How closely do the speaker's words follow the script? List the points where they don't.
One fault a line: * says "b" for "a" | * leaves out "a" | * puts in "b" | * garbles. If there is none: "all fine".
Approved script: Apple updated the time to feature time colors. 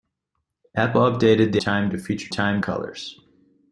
all fine